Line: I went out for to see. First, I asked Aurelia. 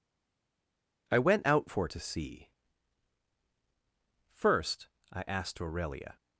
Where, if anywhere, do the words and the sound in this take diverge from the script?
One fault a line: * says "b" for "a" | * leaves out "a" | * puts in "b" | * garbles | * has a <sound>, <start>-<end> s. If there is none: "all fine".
all fine